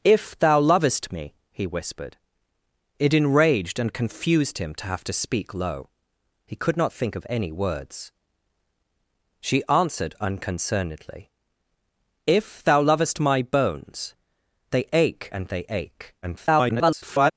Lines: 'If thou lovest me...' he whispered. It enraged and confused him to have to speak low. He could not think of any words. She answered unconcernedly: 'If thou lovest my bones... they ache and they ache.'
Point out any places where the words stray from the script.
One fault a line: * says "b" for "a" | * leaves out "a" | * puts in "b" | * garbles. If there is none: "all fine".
* garbles